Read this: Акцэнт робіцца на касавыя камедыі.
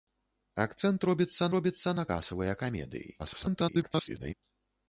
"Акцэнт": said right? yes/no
yes